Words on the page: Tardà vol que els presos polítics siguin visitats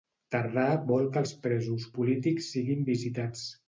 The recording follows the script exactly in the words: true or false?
true